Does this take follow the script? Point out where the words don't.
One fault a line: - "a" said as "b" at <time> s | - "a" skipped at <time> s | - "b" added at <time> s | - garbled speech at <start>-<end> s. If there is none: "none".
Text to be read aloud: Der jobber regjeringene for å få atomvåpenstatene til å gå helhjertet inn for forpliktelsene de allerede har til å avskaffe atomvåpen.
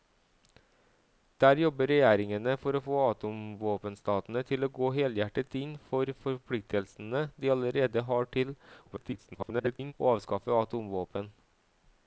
- garbled speech at 8.9-9.9 s